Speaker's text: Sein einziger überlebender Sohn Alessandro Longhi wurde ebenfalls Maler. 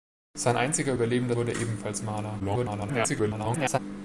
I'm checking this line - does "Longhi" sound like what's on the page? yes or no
no